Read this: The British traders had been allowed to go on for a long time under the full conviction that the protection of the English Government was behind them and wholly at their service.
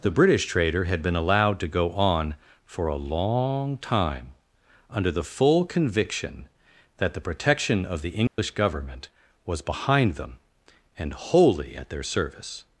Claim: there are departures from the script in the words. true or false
true